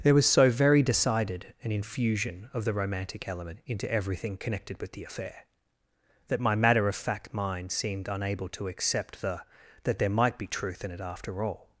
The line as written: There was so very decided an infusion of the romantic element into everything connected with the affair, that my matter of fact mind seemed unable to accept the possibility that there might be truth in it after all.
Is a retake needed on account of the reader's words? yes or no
yes